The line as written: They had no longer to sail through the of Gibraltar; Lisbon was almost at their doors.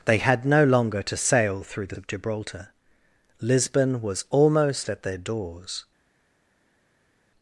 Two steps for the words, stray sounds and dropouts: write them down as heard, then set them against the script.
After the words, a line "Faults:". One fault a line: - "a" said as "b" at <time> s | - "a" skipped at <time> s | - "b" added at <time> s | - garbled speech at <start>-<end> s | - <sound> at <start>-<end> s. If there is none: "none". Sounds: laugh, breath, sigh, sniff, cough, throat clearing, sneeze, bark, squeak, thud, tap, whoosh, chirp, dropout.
They had no longer to sail through the of Gibraltar; Lisbon was almost at their doors.
Faults:
none